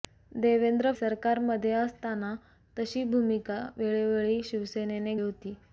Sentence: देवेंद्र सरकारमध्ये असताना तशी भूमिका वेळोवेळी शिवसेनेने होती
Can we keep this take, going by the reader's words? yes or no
yes